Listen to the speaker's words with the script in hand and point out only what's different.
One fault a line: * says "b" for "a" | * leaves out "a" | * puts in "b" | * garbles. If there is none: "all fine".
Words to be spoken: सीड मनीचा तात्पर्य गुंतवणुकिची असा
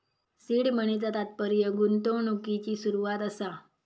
* puts in "सुरवात"